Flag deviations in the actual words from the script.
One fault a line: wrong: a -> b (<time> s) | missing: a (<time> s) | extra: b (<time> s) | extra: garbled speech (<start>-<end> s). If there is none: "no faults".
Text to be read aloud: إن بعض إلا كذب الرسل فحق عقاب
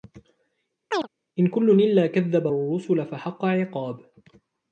wrong: بعض -> كل (1.5 s)